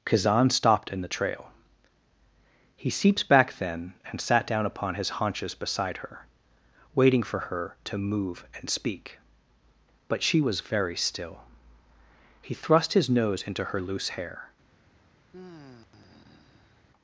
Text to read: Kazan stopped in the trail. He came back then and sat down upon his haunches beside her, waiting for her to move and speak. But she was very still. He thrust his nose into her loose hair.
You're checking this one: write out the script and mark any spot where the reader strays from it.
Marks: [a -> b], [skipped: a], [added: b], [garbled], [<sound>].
Kazan stopped in the trail. He [came -> seeps] back then and sat down upon his haunches beside her, waiting for her to move and speak. But she was very still. He thrust his nose into her loose hair. [sigh]